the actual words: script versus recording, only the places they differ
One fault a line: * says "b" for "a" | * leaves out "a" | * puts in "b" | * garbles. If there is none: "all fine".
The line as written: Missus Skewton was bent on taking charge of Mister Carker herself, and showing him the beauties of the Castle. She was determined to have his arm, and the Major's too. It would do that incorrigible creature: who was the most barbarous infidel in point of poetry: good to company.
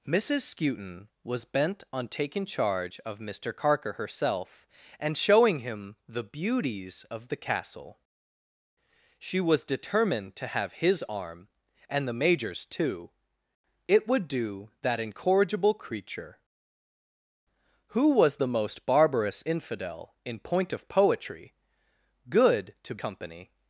all fine